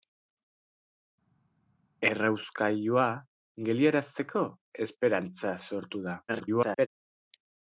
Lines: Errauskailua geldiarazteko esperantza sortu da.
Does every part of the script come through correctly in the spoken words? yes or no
no